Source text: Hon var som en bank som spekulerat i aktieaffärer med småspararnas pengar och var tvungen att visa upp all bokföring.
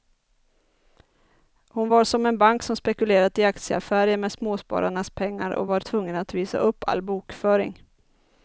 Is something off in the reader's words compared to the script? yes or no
no